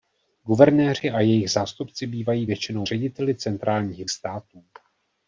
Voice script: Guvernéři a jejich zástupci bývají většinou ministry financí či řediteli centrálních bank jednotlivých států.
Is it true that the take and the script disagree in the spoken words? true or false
true